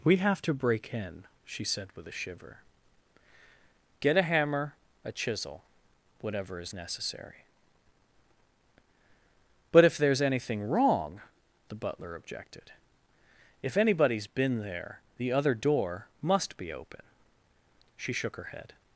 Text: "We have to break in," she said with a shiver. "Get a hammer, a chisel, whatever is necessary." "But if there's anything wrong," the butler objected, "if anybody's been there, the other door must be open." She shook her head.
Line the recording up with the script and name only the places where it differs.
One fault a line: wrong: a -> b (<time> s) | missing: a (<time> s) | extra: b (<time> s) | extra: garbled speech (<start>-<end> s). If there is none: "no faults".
no faults